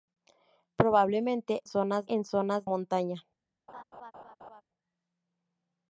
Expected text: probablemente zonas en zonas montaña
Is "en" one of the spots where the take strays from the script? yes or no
no